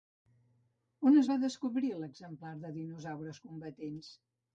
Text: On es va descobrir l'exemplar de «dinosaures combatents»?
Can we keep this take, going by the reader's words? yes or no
yes